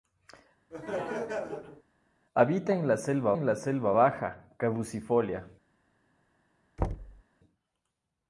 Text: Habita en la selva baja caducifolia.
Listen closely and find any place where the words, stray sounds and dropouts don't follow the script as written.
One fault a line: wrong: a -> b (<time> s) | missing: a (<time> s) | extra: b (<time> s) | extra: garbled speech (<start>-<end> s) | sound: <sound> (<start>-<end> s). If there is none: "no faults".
sound: laugh (0.7-1.8 s)
extra: en la selva (3.3 s)
sound: thud (6.8-7.2 s)